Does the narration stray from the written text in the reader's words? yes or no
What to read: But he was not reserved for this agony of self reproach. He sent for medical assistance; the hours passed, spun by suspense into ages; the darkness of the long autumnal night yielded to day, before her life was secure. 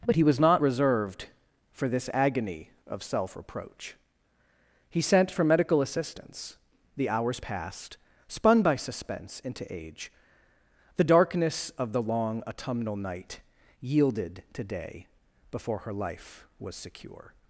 yes